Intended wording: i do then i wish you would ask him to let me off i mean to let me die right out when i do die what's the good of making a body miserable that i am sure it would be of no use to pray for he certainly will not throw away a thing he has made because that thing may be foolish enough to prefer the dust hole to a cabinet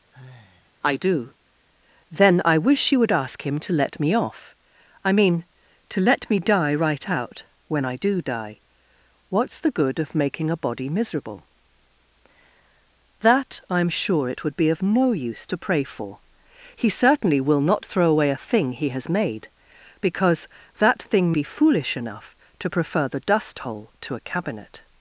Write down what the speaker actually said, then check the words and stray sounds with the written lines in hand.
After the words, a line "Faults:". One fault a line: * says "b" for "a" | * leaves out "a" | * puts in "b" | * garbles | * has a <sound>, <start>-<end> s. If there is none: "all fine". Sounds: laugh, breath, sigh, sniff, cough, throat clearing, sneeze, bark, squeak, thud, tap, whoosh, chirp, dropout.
i do then i wish you would ask him to let me off i mean to let me die right out when i do die what's the good of making a body miserable that i am sure it would be of no use to pray for he certainly will not throw away a thing he has made because that thing be foolish enough to prefer the dust hole to a cabinet
Faults:
* has a sigh, 0.1-0.7 s
* leaves out "may"